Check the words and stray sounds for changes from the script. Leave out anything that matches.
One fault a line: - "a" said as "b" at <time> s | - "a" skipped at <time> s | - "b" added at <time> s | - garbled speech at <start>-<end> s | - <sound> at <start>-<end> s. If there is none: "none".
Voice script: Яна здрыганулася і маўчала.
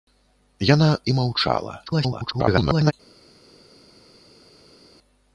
- "здрыганулася" skipped at 0.9 s
- garbled speech at 1.9-2.9 s